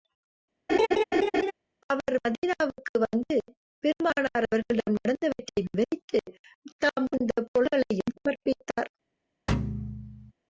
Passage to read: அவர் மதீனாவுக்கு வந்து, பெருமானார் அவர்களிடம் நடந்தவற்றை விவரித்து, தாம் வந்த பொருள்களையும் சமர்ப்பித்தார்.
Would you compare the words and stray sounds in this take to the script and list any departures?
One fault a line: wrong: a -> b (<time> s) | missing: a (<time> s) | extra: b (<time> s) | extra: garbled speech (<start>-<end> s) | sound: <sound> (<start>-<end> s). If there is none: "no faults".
sound: laugh (0.7-1.5 s)
sound: thud (9.5-10.3 s)